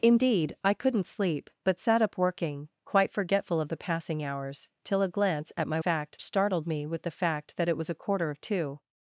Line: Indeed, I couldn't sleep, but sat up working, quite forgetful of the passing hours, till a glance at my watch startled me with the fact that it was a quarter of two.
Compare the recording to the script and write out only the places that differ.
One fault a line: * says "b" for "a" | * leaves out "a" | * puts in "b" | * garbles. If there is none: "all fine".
* says "fact" for "watch"